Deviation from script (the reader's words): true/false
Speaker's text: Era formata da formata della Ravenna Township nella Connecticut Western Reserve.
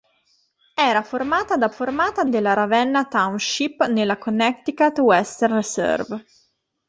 false